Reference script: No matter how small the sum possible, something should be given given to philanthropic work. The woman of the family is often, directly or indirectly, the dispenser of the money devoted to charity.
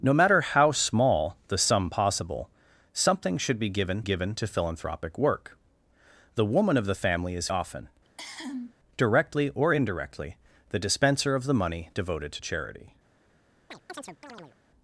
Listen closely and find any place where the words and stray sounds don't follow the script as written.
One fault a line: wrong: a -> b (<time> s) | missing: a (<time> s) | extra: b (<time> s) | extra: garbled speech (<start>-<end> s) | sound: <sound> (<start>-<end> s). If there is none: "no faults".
sound: cough (8.0-8.7 s)
sound: chirp (13.7-14.6 s)